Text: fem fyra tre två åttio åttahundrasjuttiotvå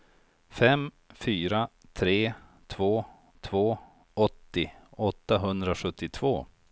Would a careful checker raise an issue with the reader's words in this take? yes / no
yes